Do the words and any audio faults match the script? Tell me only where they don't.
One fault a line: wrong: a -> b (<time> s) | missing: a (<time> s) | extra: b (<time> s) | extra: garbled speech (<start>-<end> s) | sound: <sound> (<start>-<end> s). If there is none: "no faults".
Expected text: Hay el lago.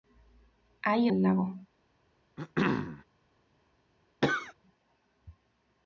sound: throat clearing (2.4-3.0 s)
sound: cough (4.2-4.5 s)